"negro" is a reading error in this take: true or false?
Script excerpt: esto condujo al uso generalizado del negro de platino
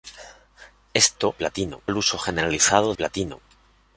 true